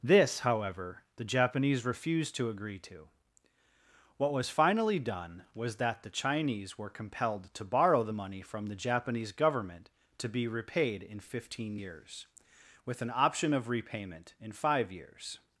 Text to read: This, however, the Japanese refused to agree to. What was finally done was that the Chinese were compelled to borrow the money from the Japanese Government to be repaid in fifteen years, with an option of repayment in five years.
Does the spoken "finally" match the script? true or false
true